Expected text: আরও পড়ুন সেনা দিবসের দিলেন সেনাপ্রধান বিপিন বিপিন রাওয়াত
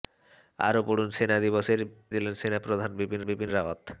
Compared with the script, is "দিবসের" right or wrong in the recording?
right